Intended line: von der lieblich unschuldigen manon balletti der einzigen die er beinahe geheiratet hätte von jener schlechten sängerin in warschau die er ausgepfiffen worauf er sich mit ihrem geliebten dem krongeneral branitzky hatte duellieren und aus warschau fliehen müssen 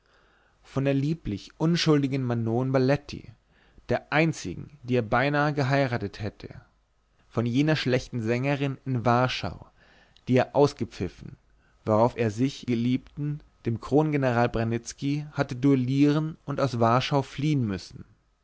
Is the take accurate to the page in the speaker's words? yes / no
no